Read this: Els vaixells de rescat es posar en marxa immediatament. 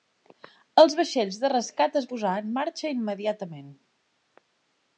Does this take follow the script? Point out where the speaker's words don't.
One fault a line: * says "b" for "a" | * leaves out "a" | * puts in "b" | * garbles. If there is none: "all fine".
all fine